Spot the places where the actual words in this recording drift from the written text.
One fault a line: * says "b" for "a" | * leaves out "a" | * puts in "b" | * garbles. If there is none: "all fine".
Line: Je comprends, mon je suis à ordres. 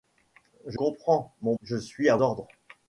all fine